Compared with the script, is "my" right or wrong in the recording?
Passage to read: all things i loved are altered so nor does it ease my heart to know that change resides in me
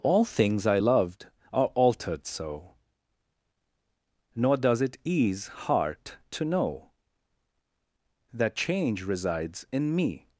wrong